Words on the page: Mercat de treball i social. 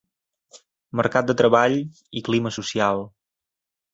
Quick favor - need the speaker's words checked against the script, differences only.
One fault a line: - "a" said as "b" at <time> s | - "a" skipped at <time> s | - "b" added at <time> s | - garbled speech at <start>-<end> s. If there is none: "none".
- "clima" added at 2.3 s